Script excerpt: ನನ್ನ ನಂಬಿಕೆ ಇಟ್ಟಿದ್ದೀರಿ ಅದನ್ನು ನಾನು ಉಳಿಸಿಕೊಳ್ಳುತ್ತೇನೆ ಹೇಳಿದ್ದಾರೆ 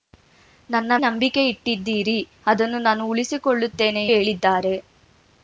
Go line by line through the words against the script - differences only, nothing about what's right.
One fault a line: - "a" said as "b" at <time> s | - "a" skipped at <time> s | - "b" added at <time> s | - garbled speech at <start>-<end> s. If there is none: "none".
none